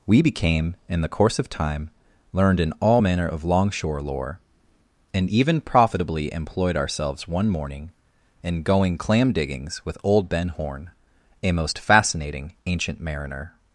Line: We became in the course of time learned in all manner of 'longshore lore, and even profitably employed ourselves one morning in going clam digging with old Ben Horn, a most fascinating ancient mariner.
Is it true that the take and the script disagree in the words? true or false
true